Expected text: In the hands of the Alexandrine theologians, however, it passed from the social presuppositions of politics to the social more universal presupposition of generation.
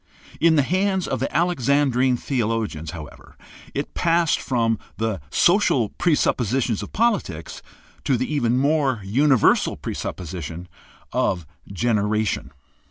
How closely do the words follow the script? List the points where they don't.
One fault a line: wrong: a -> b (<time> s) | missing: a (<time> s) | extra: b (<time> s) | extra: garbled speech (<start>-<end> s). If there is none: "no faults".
wrong: social -> even (8.3 s)